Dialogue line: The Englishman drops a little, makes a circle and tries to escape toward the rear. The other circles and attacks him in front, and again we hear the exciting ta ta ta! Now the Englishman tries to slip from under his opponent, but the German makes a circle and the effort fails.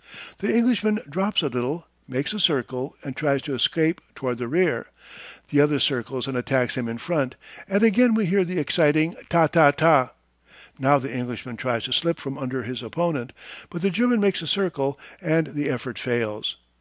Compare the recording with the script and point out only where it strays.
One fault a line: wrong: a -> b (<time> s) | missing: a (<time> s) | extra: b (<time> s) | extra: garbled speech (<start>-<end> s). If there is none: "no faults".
no faults